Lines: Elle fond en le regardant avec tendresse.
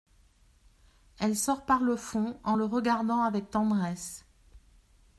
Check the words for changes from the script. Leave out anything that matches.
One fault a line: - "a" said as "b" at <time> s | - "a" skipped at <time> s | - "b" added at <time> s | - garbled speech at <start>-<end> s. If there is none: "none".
- "sort par le" added at 1.4 s